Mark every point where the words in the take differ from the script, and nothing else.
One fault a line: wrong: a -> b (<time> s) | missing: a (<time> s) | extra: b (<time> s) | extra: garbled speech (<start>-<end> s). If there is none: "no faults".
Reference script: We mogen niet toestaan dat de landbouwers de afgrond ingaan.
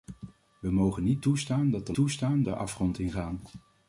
wrong: landbouwers -> toestaan (1.9 s)